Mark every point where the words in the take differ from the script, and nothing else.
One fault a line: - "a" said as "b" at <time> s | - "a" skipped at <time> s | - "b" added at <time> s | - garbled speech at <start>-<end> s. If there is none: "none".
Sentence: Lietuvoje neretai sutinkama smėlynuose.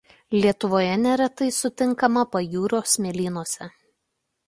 - "pajūrio" added at 2.4 s